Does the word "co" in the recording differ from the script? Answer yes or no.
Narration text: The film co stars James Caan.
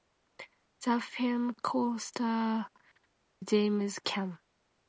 no